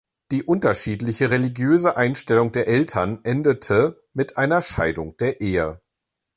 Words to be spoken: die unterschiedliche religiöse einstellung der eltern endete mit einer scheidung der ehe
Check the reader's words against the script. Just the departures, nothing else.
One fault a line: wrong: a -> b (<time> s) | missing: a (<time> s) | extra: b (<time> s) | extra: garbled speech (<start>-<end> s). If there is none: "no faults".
no faults